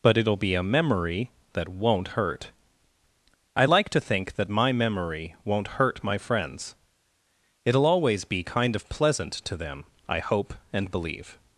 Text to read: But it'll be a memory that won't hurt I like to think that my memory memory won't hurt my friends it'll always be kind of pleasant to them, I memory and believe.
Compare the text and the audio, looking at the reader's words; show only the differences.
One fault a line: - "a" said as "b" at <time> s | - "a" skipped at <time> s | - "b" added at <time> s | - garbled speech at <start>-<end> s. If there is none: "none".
- "memory" skipped at 5.3 s
- "memory" said as "hope" at 10.2 s